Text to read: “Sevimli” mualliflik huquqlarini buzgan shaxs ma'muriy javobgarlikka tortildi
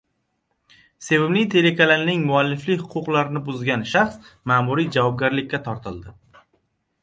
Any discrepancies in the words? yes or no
yes